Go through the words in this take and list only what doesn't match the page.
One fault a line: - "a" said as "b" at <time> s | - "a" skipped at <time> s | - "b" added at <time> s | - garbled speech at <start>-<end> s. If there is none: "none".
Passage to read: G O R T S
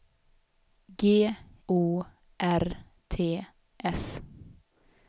none